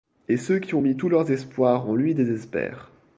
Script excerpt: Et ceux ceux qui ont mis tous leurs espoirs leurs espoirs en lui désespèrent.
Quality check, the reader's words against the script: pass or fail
fail